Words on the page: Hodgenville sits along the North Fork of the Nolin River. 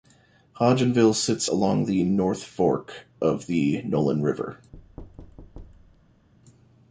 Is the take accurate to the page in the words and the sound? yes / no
no